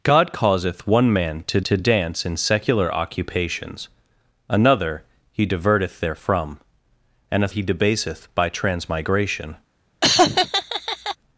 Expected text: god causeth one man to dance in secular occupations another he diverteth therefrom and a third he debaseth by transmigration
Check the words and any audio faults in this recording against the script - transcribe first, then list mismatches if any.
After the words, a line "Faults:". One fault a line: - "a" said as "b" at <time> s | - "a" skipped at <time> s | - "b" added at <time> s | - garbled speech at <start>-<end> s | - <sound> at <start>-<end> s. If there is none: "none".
god causeth one man to to dance in secular occupations another he diverteth therefrom and a he debaseth by transmigration
Faults:
- "to" added at 1.6 s
- "third" skipped at 7.5 s
- laugh at 10.0-11.2 s